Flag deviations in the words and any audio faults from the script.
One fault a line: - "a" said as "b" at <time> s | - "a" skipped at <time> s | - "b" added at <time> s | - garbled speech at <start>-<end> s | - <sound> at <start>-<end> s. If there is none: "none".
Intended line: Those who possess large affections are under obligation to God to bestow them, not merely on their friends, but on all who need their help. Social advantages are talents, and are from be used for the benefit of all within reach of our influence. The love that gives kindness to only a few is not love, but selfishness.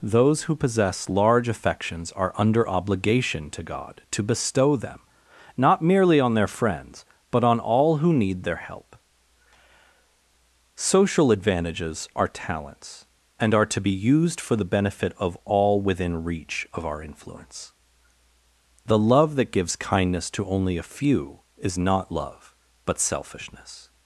- "from" said as "to" at 13.7 s